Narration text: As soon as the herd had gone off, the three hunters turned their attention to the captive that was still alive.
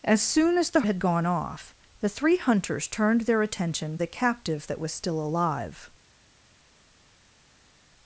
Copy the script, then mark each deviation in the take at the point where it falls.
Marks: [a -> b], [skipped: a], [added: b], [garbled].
As soon as the [skipped: herd] had gone off, the three hunters turned their attention [skipped: to] the captive that was still alive.